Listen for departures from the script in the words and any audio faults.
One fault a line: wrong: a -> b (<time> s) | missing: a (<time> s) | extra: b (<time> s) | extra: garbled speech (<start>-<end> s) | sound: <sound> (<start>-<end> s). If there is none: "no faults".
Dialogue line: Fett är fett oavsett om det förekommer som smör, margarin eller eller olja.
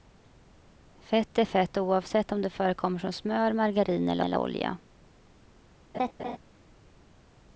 sound: laugh (5.9-6.4 s)